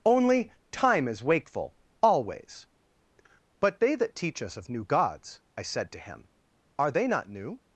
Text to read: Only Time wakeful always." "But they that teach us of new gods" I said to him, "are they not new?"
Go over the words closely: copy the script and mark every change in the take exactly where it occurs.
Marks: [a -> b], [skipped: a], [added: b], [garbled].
Only Time [added: is] wakeful always." "But they that teach us of new gods" I said to him, "are they not new?"